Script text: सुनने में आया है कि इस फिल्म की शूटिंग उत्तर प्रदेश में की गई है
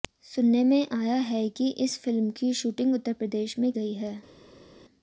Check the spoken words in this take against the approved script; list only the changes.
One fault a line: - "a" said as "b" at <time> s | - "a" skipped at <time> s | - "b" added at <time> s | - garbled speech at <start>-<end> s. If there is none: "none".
- "की" skipped at 3.7 s